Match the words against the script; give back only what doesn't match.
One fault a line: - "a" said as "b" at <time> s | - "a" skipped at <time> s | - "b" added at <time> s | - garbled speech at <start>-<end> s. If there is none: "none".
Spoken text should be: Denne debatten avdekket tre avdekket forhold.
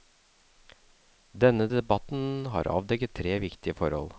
- "har" added at 2.5 s
- "avdekket" said as "viktige" at 3.4 s